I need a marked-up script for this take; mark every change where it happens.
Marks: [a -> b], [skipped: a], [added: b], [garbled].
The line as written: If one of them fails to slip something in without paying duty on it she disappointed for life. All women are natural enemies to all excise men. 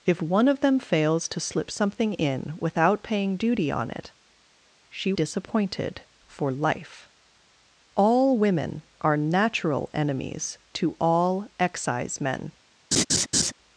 If one of them fails to slip something in without paying duty on it she disappointed for life. All women are natural enemies to all excise men.